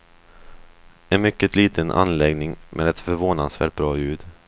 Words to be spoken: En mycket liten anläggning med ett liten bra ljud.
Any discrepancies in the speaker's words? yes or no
yes